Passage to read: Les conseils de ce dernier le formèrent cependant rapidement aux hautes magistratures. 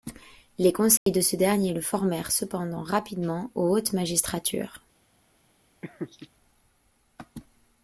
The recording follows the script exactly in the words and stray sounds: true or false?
false